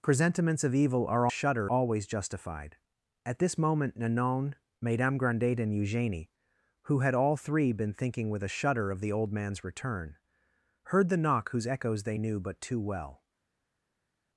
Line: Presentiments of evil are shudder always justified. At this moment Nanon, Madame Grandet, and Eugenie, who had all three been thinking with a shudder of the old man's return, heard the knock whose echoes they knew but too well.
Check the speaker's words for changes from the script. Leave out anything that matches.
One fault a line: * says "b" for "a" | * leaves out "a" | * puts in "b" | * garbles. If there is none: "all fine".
all fine